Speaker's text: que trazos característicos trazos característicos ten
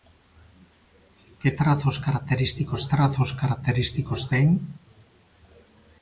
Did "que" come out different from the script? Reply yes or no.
no